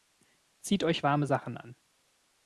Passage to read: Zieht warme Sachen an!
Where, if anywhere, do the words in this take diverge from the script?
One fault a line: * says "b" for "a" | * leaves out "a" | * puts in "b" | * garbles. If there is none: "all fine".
* puts in "euch"